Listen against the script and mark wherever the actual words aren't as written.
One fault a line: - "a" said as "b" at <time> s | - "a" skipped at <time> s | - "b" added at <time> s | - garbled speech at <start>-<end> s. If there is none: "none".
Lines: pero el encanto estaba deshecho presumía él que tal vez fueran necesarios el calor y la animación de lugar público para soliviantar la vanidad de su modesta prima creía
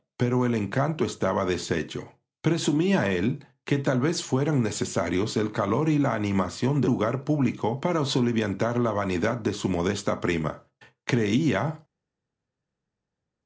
none